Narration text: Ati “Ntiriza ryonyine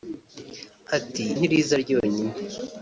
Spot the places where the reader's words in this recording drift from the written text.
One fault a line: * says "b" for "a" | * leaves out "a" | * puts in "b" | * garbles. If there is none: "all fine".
all fine